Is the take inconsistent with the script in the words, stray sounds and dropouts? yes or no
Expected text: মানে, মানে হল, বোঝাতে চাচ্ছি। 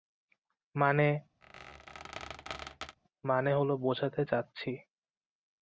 yes